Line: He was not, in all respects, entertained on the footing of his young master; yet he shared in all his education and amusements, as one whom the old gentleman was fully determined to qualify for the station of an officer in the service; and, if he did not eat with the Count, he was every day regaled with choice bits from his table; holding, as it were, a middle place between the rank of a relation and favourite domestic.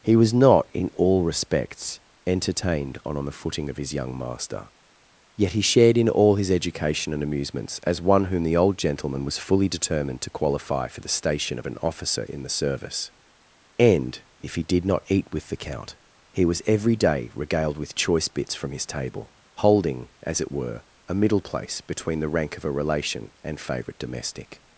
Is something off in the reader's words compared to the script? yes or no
yes